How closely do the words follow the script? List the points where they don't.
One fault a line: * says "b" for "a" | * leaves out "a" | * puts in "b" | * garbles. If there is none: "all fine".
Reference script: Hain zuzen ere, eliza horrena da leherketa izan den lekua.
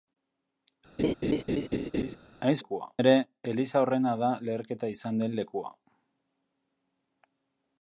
* says "lekua" for "zuzen"